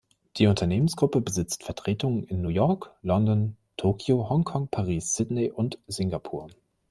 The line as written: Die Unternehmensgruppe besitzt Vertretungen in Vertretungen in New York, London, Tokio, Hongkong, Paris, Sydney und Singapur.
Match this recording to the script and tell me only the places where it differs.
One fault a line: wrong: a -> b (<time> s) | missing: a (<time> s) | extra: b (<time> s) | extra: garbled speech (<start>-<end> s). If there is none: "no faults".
missing: Vertretungen in (2.4 s)